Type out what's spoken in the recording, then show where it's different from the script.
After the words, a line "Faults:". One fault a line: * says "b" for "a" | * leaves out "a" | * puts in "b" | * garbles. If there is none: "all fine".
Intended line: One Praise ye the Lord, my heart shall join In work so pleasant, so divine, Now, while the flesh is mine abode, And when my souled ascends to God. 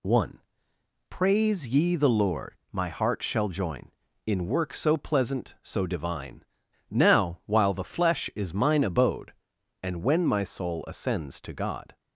One Praise ye the Lord, my heart shall join In work so pleasant, so divine, Now, while the flesh is mine abode, And when my soul ascends to God.
Faults:
* says "soul" for "souled"